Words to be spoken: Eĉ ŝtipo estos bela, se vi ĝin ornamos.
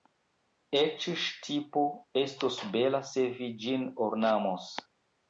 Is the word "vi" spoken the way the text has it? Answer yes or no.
yes